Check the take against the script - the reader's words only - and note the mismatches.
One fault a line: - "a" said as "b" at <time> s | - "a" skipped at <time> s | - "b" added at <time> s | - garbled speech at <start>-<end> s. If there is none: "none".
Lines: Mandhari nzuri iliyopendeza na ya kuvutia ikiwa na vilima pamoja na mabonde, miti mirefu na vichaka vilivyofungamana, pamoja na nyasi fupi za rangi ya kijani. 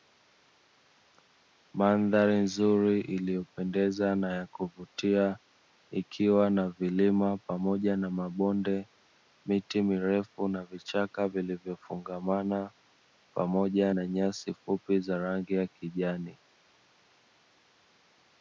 none